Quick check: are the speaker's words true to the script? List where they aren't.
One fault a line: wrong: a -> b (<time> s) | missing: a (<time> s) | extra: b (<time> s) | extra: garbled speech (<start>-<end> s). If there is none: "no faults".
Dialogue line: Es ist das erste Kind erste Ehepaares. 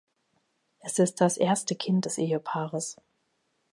wrong: erste -> des (2.0 s)